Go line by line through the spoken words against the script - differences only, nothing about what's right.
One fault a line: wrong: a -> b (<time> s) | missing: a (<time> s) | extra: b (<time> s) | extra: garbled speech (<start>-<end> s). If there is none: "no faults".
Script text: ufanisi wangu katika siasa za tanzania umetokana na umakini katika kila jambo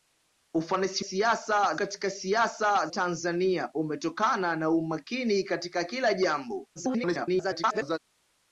wrong: wangu -> siasa (1.0 s)
missing: za (2.9 s)
extra: garbled speech (6.8-8.0 s)